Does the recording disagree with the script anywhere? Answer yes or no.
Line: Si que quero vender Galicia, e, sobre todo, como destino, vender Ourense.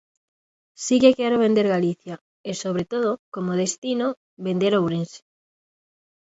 no